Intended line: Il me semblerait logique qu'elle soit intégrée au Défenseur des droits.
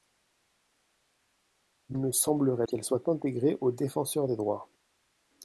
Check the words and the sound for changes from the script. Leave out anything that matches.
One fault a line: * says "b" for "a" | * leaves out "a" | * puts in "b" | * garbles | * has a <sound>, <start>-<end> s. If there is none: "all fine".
* leaves out "logique"